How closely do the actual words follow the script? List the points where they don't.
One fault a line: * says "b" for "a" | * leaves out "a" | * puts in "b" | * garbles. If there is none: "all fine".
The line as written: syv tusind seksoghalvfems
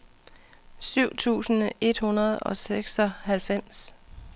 * puts in "et hundrede og"